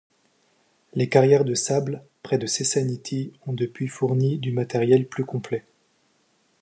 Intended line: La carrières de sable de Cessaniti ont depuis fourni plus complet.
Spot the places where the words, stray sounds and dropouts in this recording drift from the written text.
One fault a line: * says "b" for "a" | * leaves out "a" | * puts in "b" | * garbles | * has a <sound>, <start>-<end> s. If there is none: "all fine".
* says "Les" for "La"
* puts in "près"
* puts in "du matériel"